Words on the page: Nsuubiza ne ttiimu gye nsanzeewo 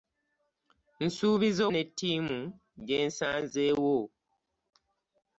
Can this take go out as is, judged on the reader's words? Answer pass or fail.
pass